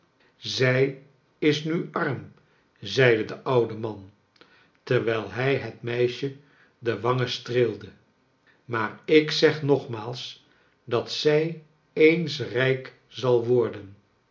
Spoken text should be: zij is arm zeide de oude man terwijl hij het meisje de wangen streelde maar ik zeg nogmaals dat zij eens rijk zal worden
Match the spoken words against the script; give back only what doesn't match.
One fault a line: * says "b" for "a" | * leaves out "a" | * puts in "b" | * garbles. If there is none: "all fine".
* puts in "nu"